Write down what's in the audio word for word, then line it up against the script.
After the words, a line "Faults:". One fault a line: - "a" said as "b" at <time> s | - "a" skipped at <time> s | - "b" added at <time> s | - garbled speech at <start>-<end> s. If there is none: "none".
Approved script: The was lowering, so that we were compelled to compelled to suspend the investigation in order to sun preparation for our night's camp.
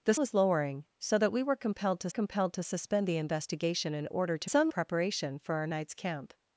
The was lowering, so that we were compelled to compelled to suspend the investigation in order to sun preparation for our night's camp.
Faults:
none